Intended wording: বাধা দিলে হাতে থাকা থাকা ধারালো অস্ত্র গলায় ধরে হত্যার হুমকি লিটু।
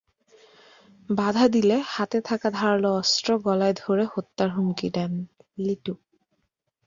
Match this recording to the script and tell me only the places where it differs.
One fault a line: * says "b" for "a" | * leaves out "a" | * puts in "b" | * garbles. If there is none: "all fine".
* leaves out "থাকা"
* puts in "দেন"